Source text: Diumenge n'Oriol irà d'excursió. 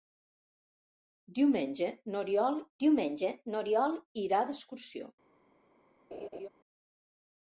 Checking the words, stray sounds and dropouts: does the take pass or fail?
fail